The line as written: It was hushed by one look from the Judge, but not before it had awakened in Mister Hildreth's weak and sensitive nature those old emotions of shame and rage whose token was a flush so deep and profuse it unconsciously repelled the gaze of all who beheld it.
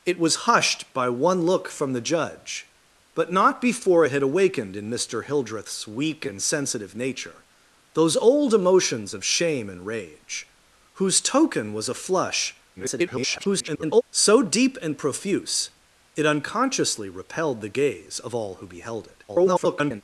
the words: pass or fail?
fail